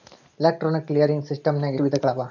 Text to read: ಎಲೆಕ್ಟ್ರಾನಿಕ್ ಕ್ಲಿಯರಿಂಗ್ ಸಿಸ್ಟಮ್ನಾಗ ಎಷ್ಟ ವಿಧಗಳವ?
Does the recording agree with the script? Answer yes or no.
no